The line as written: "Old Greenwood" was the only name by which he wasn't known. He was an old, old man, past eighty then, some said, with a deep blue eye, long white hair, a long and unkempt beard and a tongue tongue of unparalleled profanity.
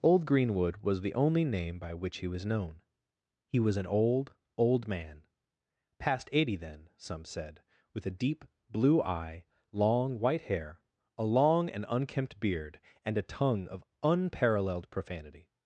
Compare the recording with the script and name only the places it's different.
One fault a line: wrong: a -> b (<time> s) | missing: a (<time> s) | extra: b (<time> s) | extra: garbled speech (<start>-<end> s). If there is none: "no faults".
wrong: wasn't -> was (2.3 s)
missing: tongue (13.7 s)